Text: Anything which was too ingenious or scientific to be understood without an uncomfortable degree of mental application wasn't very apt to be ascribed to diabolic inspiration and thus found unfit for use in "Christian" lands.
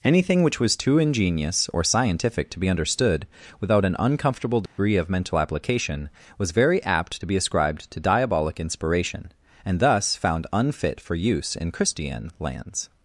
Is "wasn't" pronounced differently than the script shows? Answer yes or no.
yes